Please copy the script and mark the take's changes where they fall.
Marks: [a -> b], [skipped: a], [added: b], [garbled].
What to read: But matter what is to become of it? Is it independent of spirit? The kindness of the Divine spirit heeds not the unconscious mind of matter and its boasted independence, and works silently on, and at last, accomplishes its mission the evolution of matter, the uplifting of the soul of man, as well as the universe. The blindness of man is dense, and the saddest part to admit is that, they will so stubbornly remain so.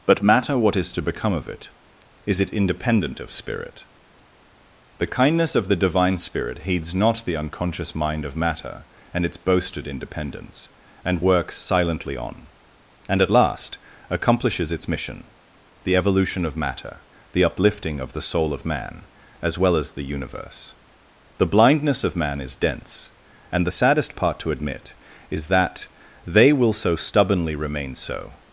But matter what is to become of it? Is it independent of spirit? The kindness of the Divine spirit heeds not the unconscious mind of matter and its boasted independence, and works silently on, and at last, accomplishes its mission the evolution of matter, the uplifting of the soul of man, as well as the universe. The blindness of man is dense, and the saddest part to admit is that, they will so stubbornly remain so.